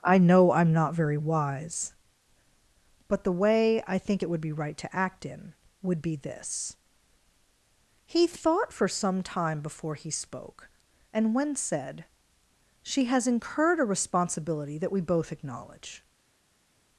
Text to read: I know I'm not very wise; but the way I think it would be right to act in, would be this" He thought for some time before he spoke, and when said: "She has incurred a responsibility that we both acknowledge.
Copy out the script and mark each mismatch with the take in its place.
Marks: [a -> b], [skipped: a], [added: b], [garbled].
I know I'm not very wise; but the way I think it would be right to act in, would be this" He thought for some time before he spoke, and when said: "She has incurred a responsibility that we both acknowledge.